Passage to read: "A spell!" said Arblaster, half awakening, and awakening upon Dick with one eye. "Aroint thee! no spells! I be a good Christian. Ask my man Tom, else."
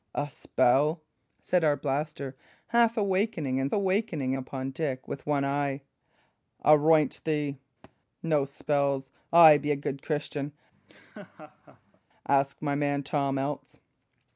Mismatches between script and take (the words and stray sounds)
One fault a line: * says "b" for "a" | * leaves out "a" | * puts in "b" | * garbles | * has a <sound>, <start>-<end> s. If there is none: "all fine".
* has a thud, 7.8-8.0 s
* has a laugh, 10.7-12.0 s